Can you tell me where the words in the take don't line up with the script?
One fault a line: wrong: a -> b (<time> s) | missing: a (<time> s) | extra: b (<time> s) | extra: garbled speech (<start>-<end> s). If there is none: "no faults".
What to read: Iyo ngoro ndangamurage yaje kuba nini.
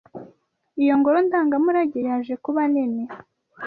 no faults